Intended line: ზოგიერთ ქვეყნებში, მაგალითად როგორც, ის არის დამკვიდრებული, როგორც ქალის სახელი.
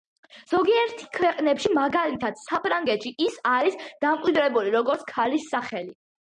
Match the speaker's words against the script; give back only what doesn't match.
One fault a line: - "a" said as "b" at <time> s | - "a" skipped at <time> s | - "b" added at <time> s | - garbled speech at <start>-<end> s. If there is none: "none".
- "როგორც" said as "საფრანგეთში" at 2.5 s